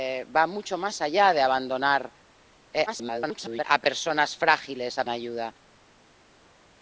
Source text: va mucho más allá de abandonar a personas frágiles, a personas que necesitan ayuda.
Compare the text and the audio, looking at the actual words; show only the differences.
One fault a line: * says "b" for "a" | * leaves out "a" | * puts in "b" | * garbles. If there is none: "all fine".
* garbles
* leaves out "personas que necesitan"